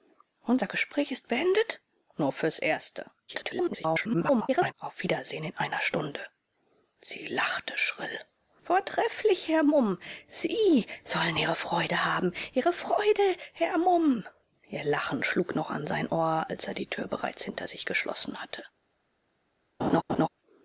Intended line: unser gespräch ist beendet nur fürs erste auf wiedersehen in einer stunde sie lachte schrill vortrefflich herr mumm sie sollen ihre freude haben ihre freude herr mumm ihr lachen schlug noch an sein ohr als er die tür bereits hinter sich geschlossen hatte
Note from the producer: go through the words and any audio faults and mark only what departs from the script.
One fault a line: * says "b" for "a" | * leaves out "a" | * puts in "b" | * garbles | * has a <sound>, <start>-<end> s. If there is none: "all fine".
* garbles
* has a laugh, 19.8-20.3 s